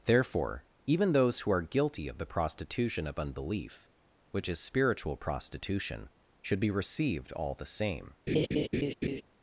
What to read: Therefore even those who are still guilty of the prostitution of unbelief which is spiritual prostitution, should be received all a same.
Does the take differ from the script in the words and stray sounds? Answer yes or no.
yes